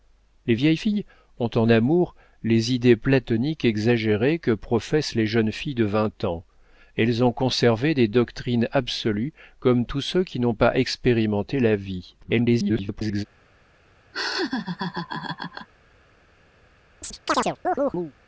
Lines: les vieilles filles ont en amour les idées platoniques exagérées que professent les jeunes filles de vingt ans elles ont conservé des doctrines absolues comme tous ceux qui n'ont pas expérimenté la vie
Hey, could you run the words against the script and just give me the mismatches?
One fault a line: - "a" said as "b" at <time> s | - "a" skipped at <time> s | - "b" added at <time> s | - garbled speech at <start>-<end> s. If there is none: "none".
- garbled speech at 12.2-13.2 s